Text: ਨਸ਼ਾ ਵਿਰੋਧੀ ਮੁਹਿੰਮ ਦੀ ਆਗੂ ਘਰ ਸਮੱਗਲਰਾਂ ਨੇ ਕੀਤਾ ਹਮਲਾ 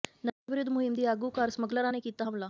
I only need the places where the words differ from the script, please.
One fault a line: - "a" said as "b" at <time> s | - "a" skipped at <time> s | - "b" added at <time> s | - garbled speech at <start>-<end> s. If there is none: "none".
none